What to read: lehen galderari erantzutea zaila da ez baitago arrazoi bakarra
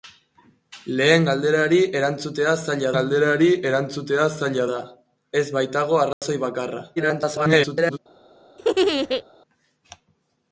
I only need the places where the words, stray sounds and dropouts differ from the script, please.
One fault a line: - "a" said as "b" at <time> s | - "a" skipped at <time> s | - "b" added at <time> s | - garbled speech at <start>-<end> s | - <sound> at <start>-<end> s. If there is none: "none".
- "galderari erantzutea zaila" added at 2.9 s
- dropout at 6.1-6.2 s
- garbled speech at 7.0-8.0 s
- laugh at 8.6-9.2 s